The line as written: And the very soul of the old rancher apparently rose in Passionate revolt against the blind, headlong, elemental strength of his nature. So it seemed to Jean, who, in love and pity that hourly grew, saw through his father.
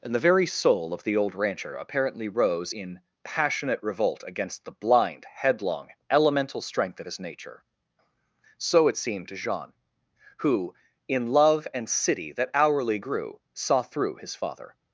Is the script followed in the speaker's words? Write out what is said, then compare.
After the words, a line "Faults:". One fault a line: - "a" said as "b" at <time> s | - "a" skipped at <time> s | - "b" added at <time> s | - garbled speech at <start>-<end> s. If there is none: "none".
And the very soul of the old rancher apparently rose in Passionate revolt against the blind, headlong, elemental strength of his nature. So it seemed to Jean, who, in love and city that hourly grew, saw through his father.
Faults:
- "pity" said as "city" at 11.9 s